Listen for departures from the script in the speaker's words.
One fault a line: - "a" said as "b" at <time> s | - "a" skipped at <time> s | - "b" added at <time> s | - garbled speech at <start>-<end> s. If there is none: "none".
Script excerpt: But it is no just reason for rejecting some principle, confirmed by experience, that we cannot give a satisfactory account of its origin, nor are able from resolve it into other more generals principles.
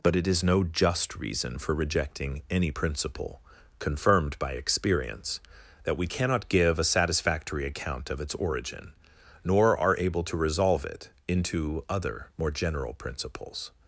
- "some" said as "any" at 2.5 s
- "from" said as "to" at 10.2 s
- "generals" said as "general" at 12.5 s